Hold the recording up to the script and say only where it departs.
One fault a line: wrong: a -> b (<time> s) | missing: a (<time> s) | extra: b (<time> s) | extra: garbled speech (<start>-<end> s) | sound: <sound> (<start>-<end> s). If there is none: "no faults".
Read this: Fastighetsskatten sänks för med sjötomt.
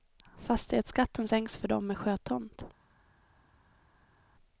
extra: dem (1.7 s)